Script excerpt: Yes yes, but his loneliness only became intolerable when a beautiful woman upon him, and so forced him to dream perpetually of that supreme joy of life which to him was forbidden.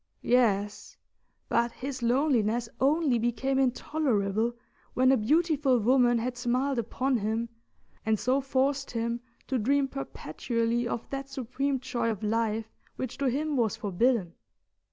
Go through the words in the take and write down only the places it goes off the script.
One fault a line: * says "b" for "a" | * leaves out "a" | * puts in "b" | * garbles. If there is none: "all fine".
* leaves out "yes"
* puts in "had smiled"